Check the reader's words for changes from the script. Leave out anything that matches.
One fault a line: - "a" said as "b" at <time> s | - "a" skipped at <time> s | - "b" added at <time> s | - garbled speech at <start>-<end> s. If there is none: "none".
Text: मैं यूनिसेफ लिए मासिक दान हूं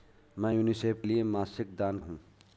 none